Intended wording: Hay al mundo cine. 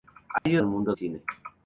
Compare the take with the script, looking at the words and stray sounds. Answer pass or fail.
fail